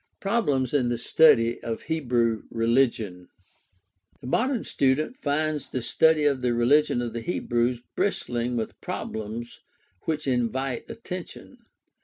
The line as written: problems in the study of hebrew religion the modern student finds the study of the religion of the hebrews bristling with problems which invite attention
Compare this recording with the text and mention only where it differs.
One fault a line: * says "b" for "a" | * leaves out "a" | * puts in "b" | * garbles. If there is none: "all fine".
all fine